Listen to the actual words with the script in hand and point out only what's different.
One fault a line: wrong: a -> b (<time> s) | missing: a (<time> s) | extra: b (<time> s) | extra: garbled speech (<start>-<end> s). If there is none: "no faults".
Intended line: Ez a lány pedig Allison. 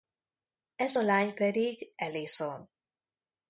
no faults